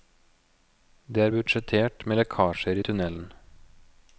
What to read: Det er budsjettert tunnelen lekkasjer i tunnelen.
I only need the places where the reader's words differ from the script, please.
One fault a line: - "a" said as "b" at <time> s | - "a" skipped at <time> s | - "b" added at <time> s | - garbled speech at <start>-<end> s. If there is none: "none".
- "tunnelen" said as "med" at 2.1 s